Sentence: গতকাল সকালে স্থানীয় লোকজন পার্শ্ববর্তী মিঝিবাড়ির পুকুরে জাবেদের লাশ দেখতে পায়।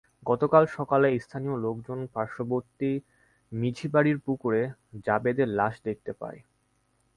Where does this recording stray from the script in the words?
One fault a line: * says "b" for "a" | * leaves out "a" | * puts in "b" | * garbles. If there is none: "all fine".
all fine